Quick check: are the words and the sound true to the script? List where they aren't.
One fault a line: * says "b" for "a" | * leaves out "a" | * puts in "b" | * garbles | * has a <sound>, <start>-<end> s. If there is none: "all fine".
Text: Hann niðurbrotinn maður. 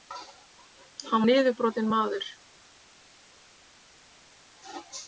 all fine